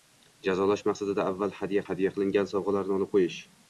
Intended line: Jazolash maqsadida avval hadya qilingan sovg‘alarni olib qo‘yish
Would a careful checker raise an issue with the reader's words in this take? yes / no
yes